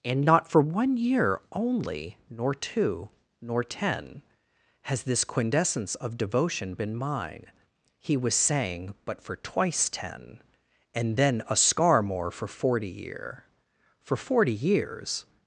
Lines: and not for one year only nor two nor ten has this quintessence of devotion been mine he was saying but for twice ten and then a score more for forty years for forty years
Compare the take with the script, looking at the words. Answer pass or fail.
fail